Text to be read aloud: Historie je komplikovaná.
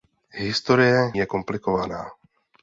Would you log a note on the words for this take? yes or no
no